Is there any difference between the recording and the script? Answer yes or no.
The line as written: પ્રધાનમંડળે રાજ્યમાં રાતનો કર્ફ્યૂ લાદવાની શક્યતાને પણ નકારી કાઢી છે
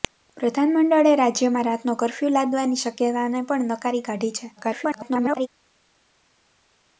yes